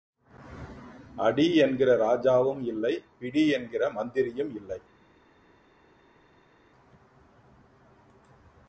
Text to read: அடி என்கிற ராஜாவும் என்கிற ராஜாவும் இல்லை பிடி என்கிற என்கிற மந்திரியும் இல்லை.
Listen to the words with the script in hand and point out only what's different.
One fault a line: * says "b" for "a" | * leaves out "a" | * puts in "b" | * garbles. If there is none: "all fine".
* leaves out "என்கிற ராஜாவும்"
* leaves out "என்கிற"